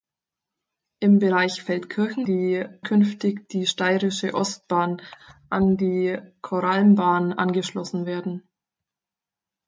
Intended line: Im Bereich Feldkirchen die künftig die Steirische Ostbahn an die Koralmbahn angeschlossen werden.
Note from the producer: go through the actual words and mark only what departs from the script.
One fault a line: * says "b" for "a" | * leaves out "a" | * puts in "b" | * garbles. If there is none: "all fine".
all fine